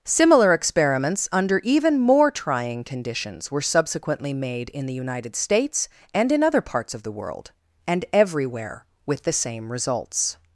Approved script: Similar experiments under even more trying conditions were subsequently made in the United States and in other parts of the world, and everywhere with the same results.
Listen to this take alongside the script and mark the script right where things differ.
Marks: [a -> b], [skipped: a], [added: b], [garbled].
Similar experiments under even more trying conditions were subsequently made in the United States and in other parts of the world, and everywhere with the same results.